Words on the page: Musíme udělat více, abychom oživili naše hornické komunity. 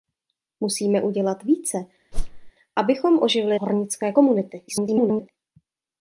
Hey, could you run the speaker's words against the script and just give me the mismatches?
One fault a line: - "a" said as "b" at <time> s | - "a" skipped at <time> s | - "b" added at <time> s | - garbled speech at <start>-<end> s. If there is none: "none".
- "naše" skipped at 3.6 s
- garbled speech at 4.7-5.3 s